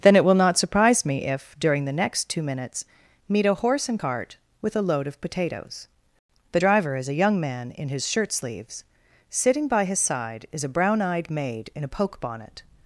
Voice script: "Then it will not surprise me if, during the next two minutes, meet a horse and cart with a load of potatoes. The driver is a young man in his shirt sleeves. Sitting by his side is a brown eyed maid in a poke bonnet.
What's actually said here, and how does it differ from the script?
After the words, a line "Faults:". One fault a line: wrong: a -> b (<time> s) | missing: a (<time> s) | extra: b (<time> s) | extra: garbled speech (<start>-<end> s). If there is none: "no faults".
"Then it will not surprise me if, during the next two minutes, meet a horse and cart with a load of potatoes. The driver is a young man in his shirt sleeves. Sitting by his side is a brown eyed maid in a poke bonnet.
Faults:
no faults